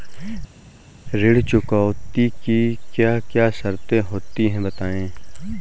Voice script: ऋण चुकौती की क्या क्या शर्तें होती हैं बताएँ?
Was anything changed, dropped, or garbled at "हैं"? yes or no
no